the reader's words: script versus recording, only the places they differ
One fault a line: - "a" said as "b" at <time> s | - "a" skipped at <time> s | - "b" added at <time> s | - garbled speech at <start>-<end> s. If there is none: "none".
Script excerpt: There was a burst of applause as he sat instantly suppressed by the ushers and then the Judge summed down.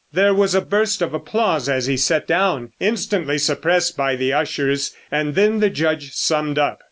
- "down" added at 2.2 s
- "down" said as "up" at 6.6 s